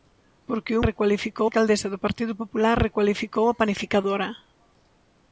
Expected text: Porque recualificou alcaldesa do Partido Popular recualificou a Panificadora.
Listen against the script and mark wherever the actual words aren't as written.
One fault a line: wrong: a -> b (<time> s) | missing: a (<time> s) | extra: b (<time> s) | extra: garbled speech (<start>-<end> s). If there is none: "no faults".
no faults